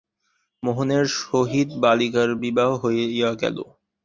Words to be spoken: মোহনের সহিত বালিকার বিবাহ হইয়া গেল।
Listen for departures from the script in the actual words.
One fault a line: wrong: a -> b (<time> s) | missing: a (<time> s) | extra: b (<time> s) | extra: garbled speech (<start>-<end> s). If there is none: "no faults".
no faults